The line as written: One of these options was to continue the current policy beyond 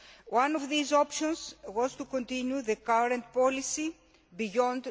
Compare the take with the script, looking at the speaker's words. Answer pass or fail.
pass